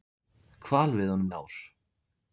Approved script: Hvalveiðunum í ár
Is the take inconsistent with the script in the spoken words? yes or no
no